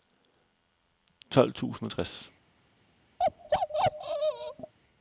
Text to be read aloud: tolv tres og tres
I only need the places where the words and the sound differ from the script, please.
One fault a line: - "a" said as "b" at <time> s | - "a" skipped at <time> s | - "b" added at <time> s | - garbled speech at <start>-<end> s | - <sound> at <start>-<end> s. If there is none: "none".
- "tres" said as "tusind" at 1.5 s
- bark at 3.2-4.7 s